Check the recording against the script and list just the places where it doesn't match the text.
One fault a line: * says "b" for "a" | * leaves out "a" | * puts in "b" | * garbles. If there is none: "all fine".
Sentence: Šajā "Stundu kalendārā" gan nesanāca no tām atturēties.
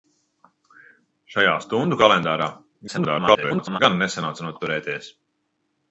* garbles
* leaves out "tām"